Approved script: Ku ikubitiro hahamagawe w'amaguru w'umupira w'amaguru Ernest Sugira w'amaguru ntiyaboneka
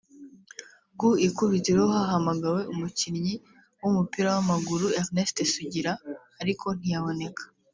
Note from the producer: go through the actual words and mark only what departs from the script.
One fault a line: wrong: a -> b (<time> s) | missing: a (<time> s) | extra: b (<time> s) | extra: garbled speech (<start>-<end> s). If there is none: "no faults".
wrong: w'amaguru -> umukinnyi (2.7 s)
wrong: w'amaguru -> ariko (6.4 s)